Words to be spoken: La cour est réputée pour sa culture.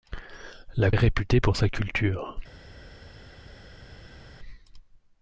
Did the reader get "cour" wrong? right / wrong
wrong